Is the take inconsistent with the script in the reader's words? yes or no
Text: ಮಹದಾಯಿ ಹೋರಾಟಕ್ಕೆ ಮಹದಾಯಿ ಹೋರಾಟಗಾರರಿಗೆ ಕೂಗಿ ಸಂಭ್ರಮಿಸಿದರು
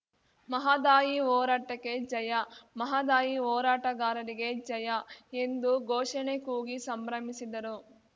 yes